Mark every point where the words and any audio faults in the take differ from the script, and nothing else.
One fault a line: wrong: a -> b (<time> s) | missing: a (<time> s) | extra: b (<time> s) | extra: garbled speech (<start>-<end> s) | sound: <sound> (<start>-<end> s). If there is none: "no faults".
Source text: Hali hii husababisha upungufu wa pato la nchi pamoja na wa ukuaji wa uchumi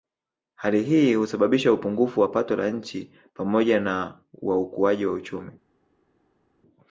no faults